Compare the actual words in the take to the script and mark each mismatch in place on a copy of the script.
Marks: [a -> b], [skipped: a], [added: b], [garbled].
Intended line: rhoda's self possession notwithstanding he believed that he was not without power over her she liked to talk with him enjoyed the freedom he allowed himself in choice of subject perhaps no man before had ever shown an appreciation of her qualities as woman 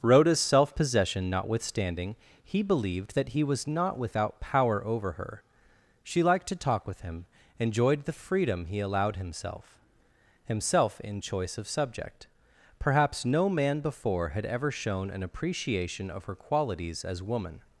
rhoda's self possession notwithstanding he believed that he was not without power over her she liked to talk with him enjoyed the freedom he allowed himself [added: himself] in choice of subject perhaps no man before had ever shown an appreciation of her qualities as woman